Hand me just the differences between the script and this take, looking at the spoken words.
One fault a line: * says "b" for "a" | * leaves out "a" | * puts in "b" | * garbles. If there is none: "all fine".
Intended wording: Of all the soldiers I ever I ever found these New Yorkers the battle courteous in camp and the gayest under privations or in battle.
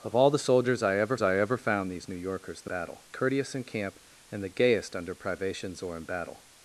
all fine